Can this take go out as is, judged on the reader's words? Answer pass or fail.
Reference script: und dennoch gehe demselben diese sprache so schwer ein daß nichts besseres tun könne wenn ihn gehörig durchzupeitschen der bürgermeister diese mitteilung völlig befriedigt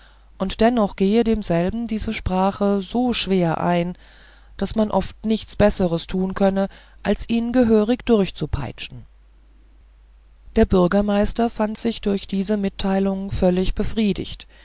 fail